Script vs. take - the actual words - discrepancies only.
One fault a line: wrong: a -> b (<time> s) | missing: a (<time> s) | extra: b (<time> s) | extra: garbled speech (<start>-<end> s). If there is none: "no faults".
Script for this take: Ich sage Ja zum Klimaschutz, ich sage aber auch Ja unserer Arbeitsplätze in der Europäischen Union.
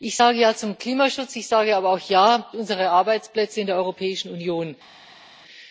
no faults